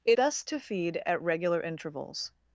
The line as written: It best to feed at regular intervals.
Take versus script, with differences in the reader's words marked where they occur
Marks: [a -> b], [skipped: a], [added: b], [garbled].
It best to feed at regular intervals.